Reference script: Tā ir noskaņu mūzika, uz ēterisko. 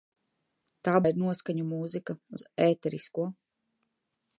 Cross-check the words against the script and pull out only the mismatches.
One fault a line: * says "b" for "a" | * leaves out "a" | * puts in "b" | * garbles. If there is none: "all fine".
all fine